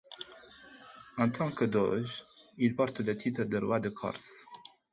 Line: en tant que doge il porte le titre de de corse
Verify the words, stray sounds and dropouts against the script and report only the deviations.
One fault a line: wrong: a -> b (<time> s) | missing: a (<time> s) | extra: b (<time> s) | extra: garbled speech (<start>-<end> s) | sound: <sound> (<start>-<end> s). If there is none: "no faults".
extra: roi (3.6 s)